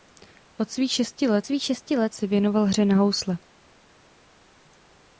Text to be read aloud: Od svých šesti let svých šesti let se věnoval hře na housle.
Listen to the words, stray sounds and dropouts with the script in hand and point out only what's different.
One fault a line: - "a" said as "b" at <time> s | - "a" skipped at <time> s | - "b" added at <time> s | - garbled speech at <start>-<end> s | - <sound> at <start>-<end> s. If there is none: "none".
none